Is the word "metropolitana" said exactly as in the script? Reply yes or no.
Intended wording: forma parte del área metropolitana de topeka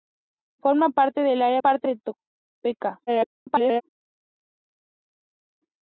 no